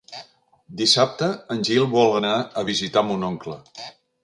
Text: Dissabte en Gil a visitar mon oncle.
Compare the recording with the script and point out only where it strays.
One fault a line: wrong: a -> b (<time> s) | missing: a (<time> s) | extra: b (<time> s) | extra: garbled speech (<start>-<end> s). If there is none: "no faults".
extra: vol anar (2.0 s)